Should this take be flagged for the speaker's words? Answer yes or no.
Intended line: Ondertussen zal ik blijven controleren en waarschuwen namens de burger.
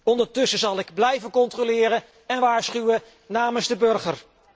no